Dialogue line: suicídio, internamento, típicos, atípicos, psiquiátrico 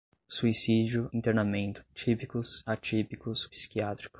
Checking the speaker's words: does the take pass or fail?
pass